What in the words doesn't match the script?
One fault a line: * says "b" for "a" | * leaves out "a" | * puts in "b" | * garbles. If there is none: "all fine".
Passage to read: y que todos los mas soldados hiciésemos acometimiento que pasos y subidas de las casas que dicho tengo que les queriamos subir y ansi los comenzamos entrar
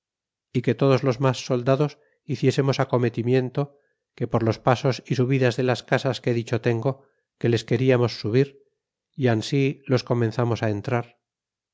* puts in "por los"